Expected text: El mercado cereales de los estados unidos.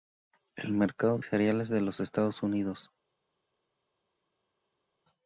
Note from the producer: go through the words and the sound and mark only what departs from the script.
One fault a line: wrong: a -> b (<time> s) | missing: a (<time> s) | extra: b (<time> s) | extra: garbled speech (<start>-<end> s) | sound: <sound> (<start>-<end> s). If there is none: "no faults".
no faults